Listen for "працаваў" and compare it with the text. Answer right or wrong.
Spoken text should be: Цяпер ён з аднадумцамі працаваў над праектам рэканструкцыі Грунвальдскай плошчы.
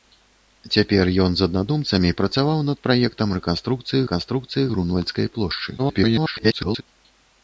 right